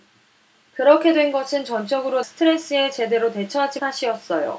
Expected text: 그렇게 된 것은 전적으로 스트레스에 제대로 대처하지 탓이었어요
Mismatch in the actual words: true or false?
false